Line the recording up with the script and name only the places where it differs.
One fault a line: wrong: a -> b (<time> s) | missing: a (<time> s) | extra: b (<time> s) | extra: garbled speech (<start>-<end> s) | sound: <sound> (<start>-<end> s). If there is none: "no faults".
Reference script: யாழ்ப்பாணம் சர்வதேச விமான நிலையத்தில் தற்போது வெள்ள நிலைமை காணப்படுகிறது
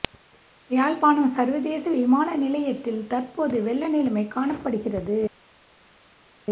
no faults